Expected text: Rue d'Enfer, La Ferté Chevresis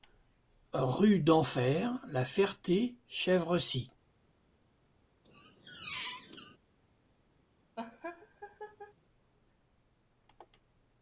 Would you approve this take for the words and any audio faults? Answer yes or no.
no